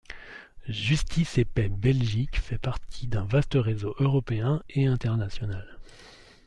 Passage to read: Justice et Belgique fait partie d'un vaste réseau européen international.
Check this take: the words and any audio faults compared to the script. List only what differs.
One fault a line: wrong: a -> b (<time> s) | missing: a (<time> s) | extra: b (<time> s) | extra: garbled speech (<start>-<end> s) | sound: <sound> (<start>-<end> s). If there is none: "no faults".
extra: Paix (1.4 s)
extra: et (4.7 s)